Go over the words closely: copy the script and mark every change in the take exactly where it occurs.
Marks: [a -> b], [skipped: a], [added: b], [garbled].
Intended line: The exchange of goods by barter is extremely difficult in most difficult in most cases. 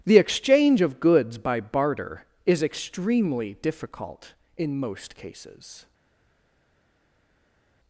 The exchange of goods by barter is extremely difficult in most [skipped: difficult in most] cases.